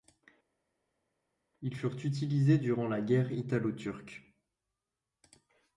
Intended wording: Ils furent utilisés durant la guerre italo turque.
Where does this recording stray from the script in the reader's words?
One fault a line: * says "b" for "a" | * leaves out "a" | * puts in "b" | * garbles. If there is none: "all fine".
all fine